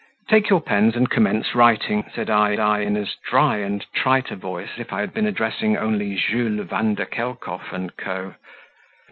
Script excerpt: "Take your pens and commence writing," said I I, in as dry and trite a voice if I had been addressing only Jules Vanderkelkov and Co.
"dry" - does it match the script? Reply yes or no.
yes